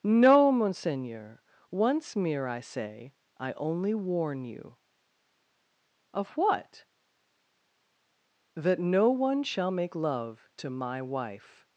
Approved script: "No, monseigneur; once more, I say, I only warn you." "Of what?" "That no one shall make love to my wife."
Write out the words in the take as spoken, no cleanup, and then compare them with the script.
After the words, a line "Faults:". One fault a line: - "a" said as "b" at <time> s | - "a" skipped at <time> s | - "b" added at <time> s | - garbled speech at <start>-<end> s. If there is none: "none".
"No, monseigneur; once mere, I say, I only warn you." "Of what?" "That no one shall make love to my wife."
Faults:
- "more" said as "mere" at 2.1 s